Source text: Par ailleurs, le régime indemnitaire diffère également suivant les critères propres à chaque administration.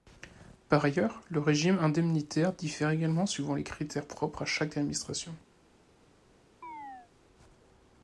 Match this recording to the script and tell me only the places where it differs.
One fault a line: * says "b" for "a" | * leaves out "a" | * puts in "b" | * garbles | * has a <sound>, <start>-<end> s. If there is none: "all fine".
* has a chirp, 6.6-7.1 s